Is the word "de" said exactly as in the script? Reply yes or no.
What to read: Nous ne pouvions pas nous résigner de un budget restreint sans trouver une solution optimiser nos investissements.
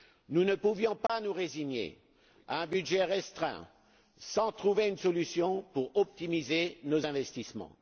no